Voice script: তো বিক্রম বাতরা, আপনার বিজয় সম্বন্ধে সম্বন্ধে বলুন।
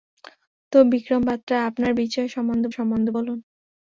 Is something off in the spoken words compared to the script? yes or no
no